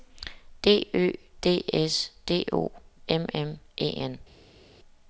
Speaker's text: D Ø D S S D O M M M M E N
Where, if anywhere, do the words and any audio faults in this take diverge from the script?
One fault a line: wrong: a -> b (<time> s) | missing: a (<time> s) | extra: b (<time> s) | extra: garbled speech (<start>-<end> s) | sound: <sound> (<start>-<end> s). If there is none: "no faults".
missing: S (2.1 s)
missing: M M (3.6 s)